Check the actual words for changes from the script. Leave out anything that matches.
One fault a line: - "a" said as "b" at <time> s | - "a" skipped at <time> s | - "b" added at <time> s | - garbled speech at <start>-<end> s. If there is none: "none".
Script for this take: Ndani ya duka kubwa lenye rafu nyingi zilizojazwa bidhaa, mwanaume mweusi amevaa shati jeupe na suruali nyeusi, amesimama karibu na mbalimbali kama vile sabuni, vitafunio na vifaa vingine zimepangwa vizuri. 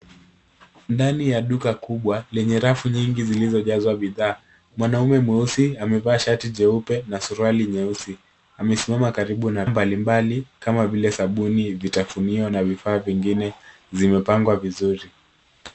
none